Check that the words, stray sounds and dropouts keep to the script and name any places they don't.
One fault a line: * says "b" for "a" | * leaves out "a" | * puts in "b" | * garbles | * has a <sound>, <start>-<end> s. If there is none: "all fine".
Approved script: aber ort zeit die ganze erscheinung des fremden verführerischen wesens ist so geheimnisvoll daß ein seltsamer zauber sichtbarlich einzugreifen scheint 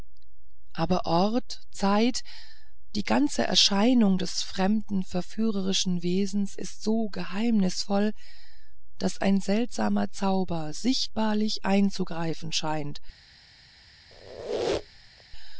* has a squeak, 14.1-15.2 s